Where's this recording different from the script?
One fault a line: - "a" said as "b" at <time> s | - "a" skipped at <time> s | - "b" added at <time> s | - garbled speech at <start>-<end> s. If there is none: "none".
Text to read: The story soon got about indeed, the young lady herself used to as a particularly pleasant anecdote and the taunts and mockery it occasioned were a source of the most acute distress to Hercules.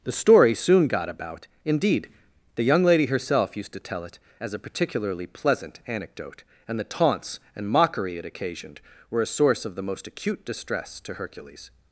- "tell it" added at 3.8 s